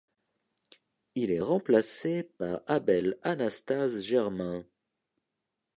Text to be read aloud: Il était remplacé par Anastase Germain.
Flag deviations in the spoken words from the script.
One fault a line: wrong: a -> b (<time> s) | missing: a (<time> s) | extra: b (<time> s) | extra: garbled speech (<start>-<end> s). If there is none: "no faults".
wrong: était -> est (1.3 s)
extra: Abel (2.7 s)